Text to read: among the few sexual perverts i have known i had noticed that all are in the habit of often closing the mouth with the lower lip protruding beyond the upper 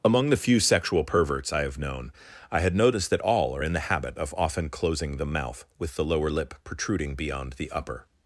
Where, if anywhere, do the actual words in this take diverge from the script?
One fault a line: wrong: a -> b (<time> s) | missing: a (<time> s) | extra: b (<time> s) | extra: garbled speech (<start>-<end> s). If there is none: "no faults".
no faults